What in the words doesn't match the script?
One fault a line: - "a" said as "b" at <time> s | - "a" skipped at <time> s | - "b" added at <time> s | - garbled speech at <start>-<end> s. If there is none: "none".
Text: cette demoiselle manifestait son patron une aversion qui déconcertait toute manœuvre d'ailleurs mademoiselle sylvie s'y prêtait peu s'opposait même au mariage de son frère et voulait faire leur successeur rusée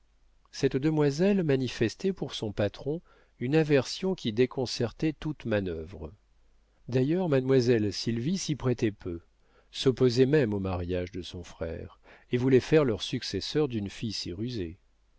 - "pour" added at 2.1 s
- "d'une fille si" added at 13.7 s